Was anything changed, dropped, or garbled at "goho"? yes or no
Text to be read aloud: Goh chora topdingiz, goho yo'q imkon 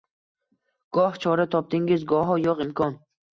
no